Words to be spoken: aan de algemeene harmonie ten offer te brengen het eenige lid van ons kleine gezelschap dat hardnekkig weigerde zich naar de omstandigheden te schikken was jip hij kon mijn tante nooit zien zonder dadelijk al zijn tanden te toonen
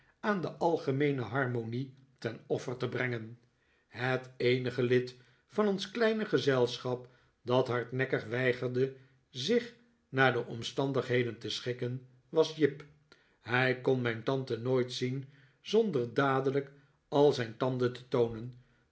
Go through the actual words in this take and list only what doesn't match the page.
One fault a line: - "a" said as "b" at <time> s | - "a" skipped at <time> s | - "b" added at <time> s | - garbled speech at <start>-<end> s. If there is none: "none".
none